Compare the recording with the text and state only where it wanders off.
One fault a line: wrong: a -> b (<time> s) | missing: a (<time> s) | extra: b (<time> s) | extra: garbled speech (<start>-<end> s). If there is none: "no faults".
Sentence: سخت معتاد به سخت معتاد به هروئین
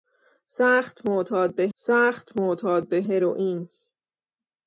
no faults